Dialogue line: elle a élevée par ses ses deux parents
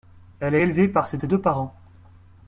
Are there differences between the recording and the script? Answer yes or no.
no